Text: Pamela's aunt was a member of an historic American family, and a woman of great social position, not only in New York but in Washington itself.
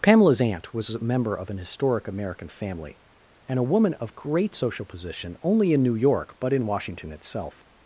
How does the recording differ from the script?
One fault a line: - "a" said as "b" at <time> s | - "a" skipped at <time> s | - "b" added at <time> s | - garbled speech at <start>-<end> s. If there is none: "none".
- "not" skipped at 5.4 s